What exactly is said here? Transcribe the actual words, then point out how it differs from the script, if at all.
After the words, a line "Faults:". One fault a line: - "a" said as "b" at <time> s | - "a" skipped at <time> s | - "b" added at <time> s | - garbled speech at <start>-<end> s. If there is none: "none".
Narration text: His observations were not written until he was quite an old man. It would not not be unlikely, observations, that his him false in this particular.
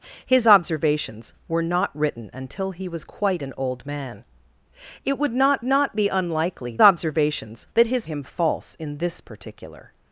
His observations were not written until he was quite an old man. It would not not be unlikely, observations, that his him false in this particular.
Faults:
none